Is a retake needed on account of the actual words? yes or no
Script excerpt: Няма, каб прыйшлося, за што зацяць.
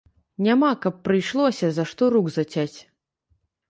yes